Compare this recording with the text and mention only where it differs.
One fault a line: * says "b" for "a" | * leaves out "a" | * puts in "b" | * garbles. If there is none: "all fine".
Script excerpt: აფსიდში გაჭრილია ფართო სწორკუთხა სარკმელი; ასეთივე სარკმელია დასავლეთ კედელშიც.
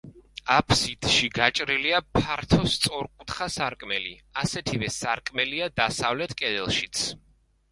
all fine